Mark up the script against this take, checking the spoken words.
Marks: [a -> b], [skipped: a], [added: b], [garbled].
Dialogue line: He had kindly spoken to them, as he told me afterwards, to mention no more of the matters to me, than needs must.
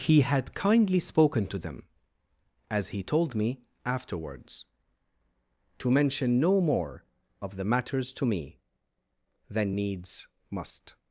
He had kindly spoken to them, as he told me afterwards, to mention no more of the matters to me, than needs must.